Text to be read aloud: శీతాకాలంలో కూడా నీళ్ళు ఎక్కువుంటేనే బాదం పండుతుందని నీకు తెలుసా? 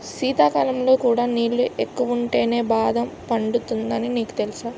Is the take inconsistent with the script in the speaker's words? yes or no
no